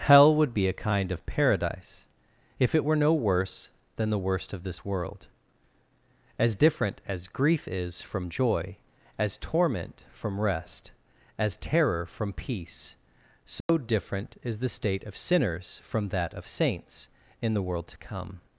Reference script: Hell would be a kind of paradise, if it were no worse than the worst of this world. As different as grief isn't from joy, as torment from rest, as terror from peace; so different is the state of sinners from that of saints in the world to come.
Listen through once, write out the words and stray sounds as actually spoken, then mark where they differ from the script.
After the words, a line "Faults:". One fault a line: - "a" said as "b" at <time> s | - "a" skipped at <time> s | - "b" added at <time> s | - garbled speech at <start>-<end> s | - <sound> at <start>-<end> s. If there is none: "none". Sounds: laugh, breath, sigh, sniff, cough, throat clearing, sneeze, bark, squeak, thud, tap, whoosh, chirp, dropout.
Hell would be a kind of paradise, if it were no worse than the worst of this world. As different as grief is from joy, as torment from rest, as terror from peace; so different is the state of sinners from that of saints in the world to come.
Faults:
- "isn't" said as "is" at 7.7 s
- dropout at 13.6-13.7 s